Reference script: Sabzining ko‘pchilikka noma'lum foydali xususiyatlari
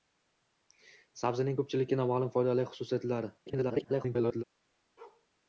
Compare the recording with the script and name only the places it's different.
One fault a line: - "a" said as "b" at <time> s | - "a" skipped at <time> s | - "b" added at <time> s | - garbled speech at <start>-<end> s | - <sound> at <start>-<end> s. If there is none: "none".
- garbled speech at 3.5-4.4 s
- bark at 5.0-5.3 s